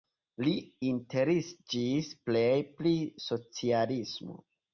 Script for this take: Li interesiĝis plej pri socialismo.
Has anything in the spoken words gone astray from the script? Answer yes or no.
no